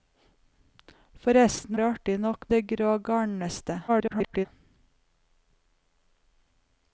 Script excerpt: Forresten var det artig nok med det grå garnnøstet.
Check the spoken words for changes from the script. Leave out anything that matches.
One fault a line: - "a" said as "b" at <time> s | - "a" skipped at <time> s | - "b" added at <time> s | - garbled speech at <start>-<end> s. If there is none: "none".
- "var" skipped at 1.8 s
- "med" skipped at 2.4 s
- garbled speech at 3.9-4.5 s